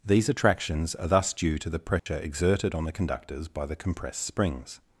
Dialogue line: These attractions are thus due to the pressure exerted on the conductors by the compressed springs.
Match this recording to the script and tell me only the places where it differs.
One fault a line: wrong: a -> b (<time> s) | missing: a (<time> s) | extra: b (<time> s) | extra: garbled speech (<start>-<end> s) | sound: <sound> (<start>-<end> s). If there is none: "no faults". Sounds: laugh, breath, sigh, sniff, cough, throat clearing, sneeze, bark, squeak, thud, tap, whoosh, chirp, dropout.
sound: dropout (2.0-2.1 s)